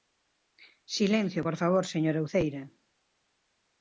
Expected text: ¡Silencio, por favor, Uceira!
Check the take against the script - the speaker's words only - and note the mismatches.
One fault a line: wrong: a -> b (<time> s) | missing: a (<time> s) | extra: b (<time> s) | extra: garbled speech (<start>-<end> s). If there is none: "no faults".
extra: señora (1.9 s)